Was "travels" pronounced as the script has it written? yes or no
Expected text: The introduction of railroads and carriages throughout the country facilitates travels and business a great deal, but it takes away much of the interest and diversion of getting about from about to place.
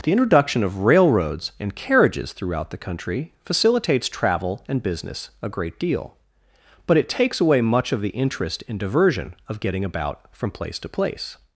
no